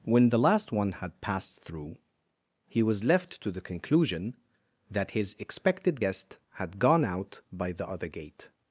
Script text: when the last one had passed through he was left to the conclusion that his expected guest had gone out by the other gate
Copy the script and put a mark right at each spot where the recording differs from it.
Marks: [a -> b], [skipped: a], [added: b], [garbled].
when the last one had passed through he was left to the conclusion that his expected guest had gone out by the other gate